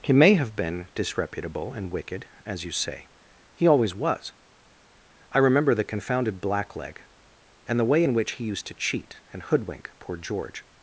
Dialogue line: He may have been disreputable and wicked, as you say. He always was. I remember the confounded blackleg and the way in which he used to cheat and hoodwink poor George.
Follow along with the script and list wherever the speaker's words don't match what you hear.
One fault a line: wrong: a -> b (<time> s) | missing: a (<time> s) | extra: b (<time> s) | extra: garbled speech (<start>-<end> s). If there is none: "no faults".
no faults